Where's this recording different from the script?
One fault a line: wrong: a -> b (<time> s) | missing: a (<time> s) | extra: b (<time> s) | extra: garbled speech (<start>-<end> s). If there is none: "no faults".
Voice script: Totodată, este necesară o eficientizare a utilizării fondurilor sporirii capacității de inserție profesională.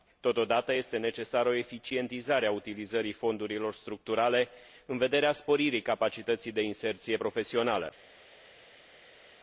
extra: structurale în vederea (3.7 s)